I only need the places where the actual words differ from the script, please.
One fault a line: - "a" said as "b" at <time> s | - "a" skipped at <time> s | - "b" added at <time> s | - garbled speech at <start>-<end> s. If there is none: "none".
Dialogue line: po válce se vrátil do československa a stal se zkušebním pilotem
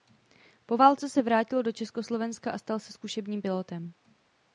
none